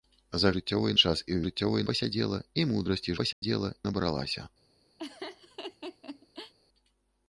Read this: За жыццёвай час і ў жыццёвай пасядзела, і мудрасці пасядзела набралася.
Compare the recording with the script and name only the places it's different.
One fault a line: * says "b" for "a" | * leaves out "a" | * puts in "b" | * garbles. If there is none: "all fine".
all fine